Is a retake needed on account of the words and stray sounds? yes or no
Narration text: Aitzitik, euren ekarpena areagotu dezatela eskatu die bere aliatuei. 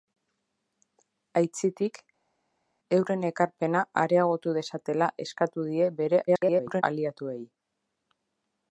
yes